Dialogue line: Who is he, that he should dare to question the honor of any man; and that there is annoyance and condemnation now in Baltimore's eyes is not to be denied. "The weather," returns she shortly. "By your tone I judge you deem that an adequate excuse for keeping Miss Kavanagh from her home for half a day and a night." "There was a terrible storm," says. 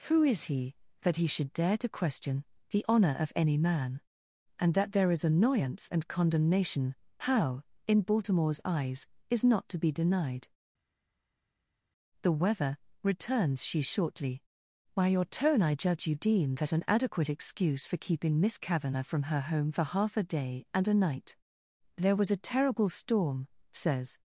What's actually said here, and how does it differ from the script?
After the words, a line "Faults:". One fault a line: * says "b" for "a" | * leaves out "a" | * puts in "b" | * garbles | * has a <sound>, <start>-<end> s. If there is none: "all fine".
Who is he, that he should dare to question the honor of any man; and that there is annoyance and condemnation how in Baltimore's eyes is not to be denied. "The weather," returns she shortly. "By your tone I judge you deem that an adequate excuse for keeping Miss Kavanagh from her home for half a day and a night." "There was a terrible storm," says.
Faults:
* says "how" for "now"